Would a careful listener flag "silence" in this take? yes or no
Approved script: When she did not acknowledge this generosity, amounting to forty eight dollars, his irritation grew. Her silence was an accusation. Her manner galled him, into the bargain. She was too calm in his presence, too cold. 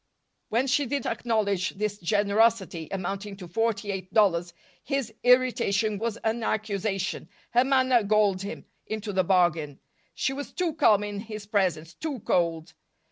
yes